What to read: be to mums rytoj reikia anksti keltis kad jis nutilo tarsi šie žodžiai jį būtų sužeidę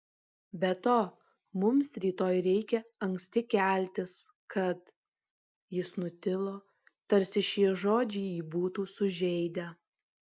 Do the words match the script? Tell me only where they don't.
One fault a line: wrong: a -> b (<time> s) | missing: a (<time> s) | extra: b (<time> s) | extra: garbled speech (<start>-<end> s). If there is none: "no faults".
no faults